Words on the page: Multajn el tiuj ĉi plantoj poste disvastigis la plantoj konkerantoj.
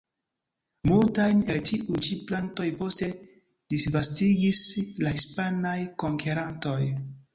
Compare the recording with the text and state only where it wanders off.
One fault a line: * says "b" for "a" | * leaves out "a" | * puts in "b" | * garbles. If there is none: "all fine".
* says "hispanaj" for "plantoj"